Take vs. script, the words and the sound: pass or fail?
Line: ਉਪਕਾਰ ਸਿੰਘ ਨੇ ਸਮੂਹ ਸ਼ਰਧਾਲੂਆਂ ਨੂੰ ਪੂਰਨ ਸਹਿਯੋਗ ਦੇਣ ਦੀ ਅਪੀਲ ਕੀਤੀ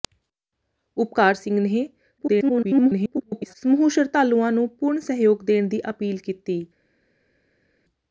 fail